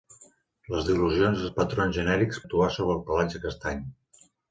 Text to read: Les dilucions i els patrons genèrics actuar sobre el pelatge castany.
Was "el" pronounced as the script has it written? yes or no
yes